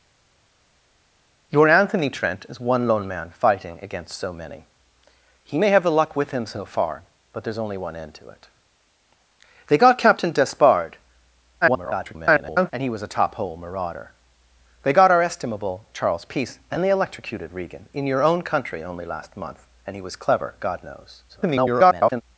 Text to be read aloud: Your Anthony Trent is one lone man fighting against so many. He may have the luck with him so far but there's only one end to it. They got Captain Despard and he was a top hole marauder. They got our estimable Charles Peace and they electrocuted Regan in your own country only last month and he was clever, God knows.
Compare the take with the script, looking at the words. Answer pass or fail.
fail